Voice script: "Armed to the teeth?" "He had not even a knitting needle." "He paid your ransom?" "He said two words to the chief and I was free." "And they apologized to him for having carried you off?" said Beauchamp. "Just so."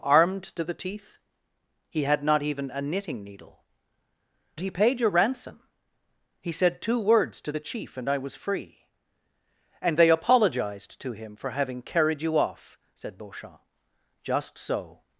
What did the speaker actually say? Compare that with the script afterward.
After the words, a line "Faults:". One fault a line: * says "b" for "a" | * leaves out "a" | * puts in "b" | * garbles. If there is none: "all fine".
"Armed to the teeth?" "He had not even a knitting needle." "He paid your ransom?" "He said two words to the chief and I was free." "And they apologized to him for having carried you off?" said Beauchamp. "Just so."
Faults:
all fine